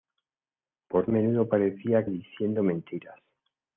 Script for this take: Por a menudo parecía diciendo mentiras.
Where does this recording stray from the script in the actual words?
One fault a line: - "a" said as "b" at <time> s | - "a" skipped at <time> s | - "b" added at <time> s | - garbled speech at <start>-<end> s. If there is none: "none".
none